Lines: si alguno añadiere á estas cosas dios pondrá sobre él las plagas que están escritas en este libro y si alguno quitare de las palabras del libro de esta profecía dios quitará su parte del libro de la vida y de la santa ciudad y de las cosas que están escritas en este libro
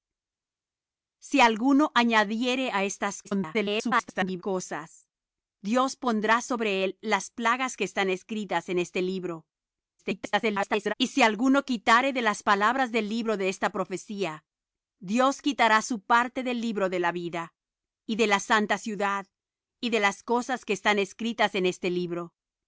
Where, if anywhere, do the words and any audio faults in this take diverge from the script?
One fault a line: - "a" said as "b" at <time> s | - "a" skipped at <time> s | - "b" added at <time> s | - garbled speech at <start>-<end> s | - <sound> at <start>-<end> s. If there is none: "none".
- garbled speech at 3.2-4.4 s
- garbled speech at 10.0-10.9 s